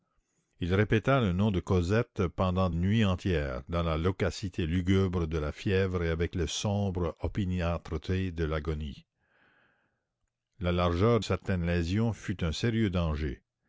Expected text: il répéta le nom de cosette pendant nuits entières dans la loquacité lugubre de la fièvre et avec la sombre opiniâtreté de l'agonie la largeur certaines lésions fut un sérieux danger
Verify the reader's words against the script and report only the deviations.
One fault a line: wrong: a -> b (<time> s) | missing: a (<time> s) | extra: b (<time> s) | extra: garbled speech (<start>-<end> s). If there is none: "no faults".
no faults